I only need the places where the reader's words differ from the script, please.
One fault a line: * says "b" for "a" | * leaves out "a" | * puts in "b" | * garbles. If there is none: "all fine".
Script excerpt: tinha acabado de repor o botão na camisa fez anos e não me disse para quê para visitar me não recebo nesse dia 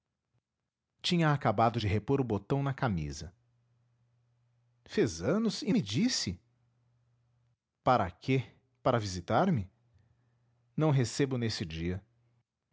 * leaves out "não"